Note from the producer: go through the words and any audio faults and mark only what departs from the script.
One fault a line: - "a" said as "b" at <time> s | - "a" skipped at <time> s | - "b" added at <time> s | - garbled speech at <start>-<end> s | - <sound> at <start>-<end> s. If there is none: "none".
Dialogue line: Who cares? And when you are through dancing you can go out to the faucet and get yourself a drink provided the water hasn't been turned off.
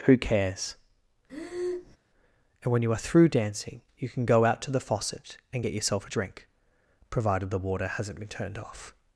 - breath at 1.3-2.0 s